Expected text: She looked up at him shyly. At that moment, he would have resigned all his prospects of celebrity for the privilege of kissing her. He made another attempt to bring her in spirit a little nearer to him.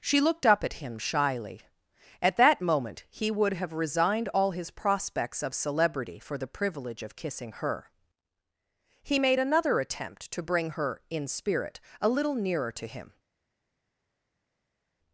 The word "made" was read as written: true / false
true